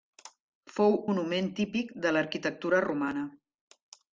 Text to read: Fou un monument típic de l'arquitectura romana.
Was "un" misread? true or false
true